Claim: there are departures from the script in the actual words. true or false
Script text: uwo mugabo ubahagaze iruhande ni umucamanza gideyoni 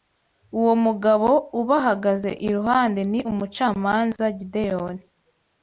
false